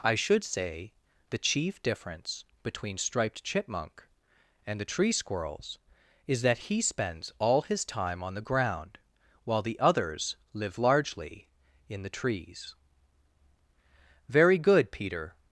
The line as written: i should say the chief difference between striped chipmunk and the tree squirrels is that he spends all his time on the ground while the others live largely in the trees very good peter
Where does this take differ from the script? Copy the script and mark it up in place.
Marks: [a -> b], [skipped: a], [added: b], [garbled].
i should say the chief difference between striped chipmunk and the tree squirrels is that he spends all his time on the ground while the others live largely in the trees very good peter